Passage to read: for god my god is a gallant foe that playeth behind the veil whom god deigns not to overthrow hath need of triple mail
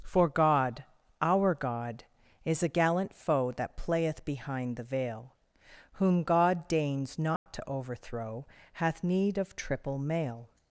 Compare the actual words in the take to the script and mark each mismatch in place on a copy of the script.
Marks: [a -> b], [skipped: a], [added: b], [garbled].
for god [my -> our] god is a gallant foe that playeth behind the veil whom god deigns not to overthrow hath need of triple mail